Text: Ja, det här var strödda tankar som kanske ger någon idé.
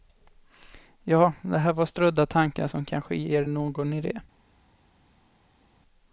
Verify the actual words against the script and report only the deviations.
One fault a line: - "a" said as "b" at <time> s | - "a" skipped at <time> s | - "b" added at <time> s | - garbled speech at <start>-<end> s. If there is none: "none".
none